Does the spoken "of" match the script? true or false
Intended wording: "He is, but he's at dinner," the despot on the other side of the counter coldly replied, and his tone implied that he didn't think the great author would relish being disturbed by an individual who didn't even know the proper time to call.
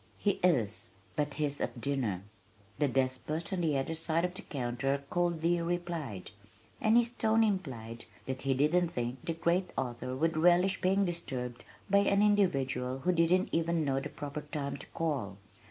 true